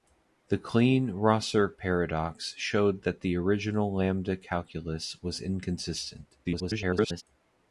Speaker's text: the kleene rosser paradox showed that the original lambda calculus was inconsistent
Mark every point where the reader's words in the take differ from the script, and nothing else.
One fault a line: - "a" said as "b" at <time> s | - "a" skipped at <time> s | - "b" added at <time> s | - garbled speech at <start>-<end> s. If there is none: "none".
- garbled speech at 6.4-7.2 s